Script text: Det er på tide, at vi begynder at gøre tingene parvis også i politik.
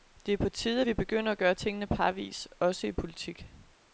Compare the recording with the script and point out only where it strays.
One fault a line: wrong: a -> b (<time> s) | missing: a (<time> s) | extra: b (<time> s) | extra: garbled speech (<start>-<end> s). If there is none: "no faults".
no faults